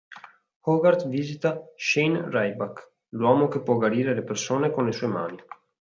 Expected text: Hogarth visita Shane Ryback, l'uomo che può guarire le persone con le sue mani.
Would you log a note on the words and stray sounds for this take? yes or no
no